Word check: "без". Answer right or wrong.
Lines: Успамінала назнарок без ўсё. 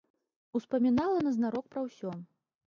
wrong